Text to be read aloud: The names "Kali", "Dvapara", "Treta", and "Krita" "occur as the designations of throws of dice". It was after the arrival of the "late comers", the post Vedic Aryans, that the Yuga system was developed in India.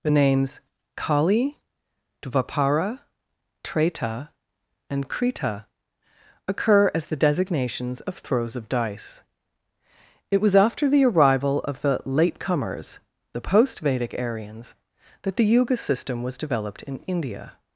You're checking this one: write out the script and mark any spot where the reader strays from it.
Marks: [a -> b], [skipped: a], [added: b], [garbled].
The names "Kali", "Dvapara", "Treta", and "Krita" "occur as the designations of throws of dice". It was after the arrival of the "late comers", the post Vedic Aryans, that the Yuga system was developed in India.